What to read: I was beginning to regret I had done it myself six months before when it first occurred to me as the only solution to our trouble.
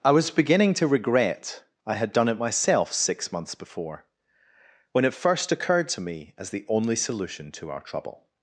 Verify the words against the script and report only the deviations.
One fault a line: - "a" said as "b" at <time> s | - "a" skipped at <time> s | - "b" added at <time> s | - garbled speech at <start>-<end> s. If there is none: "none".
none